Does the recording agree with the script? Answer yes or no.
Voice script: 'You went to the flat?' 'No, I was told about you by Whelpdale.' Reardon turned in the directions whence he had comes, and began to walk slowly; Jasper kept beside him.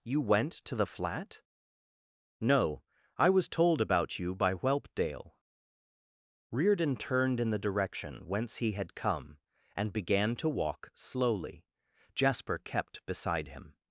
no